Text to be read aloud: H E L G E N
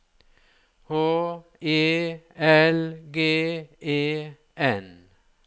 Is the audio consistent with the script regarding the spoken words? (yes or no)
yes